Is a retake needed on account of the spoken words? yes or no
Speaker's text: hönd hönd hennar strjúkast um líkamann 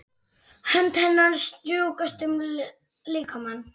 yes